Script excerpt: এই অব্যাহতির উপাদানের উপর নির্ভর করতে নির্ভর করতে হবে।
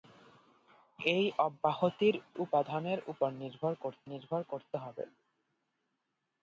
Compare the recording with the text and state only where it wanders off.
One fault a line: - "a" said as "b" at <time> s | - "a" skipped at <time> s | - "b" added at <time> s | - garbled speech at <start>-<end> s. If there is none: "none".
none